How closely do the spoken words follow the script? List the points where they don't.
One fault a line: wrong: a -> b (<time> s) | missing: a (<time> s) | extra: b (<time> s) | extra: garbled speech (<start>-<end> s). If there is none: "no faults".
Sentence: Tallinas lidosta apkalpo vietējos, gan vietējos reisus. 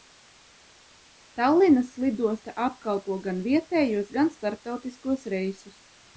extra: gan (3.3 s)
wrong: vietējos -> starptautiskos (4.4 s)